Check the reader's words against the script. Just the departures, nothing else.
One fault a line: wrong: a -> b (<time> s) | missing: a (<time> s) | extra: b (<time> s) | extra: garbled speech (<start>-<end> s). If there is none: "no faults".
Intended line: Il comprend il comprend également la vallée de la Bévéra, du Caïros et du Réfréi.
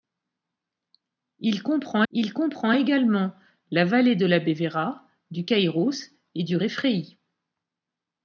no faults